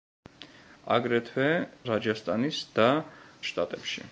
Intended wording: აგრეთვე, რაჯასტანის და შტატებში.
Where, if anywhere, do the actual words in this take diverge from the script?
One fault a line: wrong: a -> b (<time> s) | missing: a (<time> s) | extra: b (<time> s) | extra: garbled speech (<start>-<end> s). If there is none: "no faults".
no faults